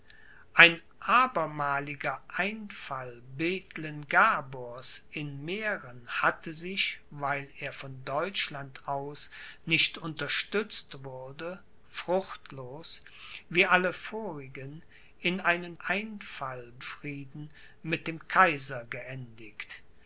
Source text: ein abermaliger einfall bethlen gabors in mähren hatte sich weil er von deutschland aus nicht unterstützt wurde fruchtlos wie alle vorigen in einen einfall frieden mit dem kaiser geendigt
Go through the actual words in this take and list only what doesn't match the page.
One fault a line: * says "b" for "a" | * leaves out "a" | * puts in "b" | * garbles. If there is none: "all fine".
all fine